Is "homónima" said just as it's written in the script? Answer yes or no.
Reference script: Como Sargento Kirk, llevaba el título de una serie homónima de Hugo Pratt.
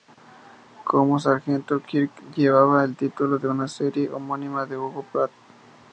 yes